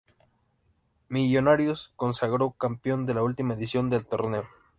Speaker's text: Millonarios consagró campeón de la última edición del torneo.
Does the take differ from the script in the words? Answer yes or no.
no